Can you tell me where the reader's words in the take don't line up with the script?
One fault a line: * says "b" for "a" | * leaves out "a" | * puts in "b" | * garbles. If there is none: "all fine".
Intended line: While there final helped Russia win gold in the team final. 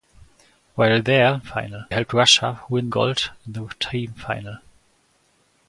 all fine